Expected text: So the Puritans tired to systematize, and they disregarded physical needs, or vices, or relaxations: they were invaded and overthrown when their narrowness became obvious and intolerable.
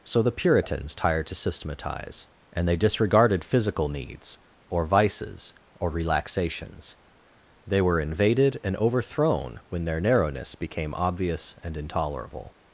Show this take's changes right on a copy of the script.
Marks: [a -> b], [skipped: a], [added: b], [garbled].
So the Puritans tired to systematize, and they disregarded physical needs, or vices, or relaxations: they were invaded and overthrown when their narrowness became obvious and intolerable.